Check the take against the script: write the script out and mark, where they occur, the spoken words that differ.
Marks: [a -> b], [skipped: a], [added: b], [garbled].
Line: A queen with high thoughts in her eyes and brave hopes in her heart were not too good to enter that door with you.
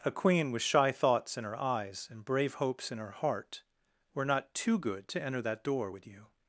A queen with [high -> shy] thoughts in her eyes and brave hopes in her heart were not too good to enter that door with you.